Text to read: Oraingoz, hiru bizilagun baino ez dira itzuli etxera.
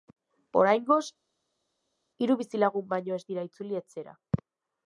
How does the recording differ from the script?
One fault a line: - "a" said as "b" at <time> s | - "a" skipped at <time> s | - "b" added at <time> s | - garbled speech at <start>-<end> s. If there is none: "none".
none